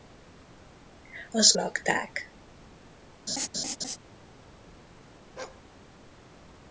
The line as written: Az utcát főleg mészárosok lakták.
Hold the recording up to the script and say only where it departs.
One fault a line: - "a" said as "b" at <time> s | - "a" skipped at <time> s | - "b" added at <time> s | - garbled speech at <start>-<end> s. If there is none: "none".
- "utcát főleg mészárosok" skipped at 1.6 s